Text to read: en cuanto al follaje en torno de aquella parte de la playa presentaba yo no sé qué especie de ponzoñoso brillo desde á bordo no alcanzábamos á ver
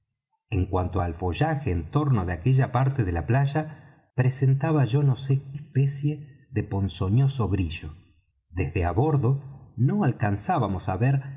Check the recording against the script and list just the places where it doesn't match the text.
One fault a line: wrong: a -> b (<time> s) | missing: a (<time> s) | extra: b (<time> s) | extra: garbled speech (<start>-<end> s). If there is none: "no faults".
missing: qué (5.4 s)